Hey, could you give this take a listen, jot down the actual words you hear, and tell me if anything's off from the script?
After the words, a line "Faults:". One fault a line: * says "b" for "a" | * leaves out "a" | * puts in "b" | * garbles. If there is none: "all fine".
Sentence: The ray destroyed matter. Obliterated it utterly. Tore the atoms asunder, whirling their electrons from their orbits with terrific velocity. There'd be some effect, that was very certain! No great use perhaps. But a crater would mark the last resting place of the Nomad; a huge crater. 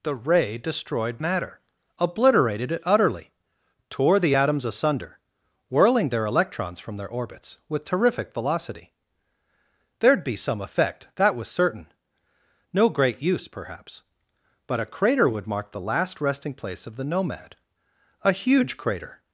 The ray destroyed matter. Obliterated it utterly. Tore the atoms asunder, whirling their electrons from their orbits with terrific velocity. There'd be some effect, that was certain! No great use perhaps. But a crater would mark the last resting place of the Nomad; a huge crater.
Faults:
* leaves out "very"